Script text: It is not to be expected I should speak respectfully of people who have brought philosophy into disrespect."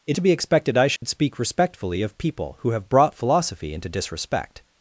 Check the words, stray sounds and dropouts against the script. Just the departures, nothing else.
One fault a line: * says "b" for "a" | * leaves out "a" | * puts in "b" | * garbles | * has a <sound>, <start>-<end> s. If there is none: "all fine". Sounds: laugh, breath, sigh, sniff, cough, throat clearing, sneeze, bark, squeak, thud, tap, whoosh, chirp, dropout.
* leaves out "is not"
* has a dropout, 1.0-1.0 s